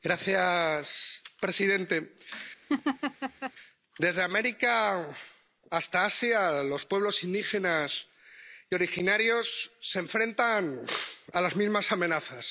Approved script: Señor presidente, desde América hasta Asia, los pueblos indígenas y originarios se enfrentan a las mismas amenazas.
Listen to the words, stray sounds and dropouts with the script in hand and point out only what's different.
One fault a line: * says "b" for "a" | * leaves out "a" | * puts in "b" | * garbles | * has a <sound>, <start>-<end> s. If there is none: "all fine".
* has a laugh, 2.7-3.5 s